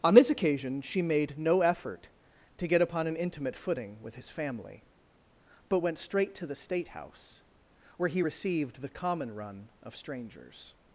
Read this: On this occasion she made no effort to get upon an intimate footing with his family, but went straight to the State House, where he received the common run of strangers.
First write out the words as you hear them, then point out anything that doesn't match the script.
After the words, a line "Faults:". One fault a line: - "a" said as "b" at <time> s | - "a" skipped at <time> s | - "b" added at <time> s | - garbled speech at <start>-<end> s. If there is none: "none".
On this occasion she made no effort to get upon an intimate footing with his family, but went straight to the State House, where he received the common run of strangers.
Faults:
none